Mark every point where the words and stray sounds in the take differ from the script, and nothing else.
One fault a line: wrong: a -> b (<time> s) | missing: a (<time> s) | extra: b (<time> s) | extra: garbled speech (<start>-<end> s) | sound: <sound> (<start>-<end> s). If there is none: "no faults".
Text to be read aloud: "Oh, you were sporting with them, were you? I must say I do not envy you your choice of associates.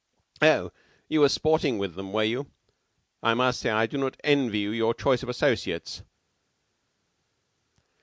no faults